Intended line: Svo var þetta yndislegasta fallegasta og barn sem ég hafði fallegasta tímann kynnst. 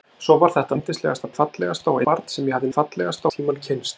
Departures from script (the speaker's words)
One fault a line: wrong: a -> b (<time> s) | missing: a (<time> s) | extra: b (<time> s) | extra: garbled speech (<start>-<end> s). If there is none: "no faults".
no faults